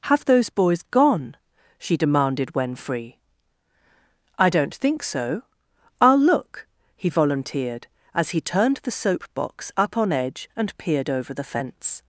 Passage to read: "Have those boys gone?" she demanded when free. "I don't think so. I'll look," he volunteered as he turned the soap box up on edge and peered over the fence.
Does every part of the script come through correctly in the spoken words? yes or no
yes